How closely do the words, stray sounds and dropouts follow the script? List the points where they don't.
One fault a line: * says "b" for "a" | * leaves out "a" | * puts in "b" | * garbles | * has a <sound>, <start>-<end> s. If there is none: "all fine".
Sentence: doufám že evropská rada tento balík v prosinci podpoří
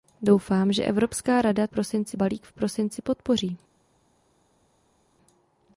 * says "prosinci" for "tento"